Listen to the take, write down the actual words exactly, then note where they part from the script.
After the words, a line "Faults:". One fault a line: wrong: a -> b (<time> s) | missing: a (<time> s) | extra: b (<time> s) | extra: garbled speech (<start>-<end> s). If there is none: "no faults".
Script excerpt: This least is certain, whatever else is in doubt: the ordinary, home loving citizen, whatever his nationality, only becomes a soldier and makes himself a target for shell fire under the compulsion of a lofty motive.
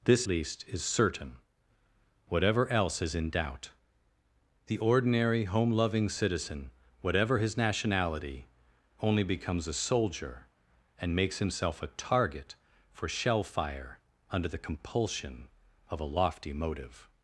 This least is certain, whatever else is in doubt: the ordinary, home loving citizen, whatever his nationality, only becomes a soldier and makes himself a target for shell fire under the compulsion of a lofty motive.
Faults:
no faults